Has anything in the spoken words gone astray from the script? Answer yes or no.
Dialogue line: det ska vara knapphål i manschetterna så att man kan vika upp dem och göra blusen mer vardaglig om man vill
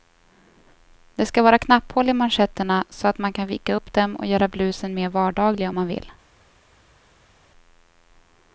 no